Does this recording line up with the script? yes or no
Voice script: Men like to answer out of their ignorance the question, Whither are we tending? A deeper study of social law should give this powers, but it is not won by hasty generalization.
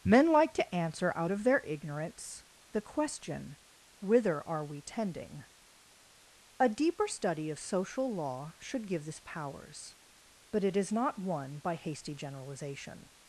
yes